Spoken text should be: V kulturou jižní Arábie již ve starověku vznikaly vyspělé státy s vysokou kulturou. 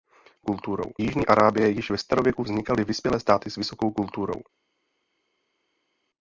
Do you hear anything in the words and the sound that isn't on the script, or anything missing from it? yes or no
no